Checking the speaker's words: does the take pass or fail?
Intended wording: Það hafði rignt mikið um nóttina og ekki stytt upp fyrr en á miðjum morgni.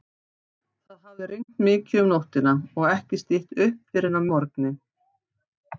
fail